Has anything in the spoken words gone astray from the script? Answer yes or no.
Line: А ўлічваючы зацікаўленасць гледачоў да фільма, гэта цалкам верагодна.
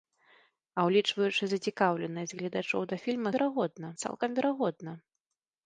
yes